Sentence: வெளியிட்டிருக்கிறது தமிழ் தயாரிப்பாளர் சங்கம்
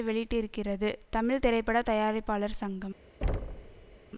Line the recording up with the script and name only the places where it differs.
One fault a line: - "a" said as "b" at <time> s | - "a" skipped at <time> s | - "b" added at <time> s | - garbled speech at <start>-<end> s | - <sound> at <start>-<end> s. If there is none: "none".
- "திரைப்பட" added at 1.4 s
- thud at 3.2-4.0 s